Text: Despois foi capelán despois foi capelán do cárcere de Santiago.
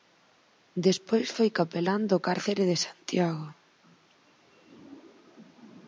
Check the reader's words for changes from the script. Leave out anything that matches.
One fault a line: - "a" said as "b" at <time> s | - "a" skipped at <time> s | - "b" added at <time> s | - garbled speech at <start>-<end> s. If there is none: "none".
- "despois foi capelán" skipped at 2.0 s